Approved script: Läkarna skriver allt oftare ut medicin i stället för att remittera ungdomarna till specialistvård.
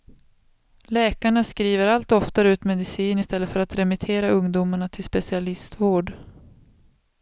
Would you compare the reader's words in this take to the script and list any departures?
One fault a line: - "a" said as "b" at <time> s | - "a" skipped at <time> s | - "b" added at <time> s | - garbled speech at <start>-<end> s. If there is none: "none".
none